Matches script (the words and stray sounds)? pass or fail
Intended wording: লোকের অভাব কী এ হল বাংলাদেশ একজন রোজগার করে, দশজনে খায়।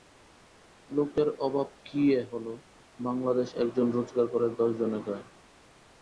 pass